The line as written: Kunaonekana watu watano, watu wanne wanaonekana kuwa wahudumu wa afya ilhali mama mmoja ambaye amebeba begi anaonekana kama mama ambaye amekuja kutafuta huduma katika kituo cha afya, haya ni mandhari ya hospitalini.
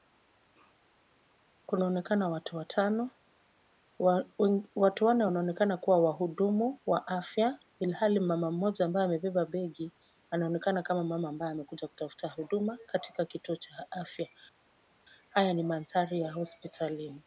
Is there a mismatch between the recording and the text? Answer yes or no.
no